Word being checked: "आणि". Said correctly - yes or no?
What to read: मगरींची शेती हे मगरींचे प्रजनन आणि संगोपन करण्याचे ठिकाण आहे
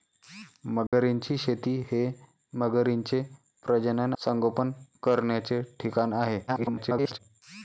no